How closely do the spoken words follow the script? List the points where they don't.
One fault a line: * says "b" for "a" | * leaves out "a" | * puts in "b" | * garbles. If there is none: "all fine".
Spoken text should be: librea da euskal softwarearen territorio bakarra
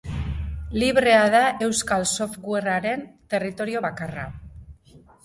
all fine